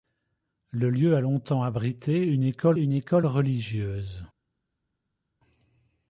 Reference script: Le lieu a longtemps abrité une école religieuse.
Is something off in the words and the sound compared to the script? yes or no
yes